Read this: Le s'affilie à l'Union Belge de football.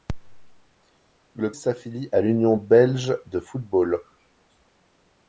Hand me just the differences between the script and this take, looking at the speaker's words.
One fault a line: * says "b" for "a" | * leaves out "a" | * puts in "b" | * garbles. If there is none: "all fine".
all fine